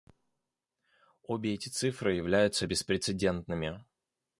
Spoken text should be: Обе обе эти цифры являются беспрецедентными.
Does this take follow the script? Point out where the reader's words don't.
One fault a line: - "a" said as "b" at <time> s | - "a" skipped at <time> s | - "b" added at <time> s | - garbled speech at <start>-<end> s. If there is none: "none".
- "обе" skipped at 1.5 s